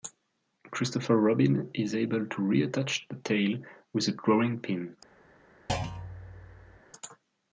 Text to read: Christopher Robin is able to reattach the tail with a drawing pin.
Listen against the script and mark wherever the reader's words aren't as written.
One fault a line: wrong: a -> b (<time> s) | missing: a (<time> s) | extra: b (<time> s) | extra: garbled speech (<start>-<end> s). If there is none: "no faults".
no faults